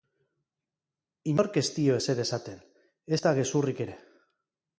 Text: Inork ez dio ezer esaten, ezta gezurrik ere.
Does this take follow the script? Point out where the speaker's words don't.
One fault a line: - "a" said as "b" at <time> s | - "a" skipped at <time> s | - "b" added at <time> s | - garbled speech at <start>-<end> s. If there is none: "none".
none